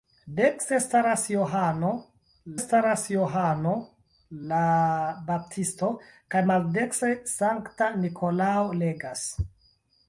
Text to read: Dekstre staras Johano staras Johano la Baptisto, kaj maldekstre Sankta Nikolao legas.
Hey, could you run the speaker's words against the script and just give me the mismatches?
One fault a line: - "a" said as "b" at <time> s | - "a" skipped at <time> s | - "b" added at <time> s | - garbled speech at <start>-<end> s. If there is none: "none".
none